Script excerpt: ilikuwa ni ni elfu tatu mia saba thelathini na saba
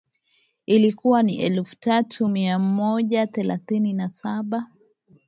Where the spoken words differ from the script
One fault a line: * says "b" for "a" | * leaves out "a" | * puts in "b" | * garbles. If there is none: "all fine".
* leaves out "ni"
* says "moja" for "saba"